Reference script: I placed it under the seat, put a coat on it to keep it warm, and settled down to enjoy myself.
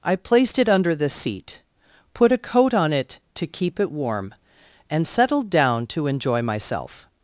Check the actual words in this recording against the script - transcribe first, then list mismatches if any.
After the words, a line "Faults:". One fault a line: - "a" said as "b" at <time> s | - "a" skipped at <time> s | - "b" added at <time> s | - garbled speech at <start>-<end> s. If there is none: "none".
I placed it under the seat, put a coat on it to keep it warm, and settled down to enjoy myself.
Faults:
none